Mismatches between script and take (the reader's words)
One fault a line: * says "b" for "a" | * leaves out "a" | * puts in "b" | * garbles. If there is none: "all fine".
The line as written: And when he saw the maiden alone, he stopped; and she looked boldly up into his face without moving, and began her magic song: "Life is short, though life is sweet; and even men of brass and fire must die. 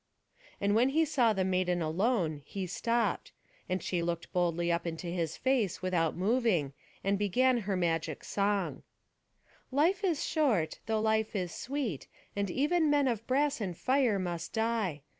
all fine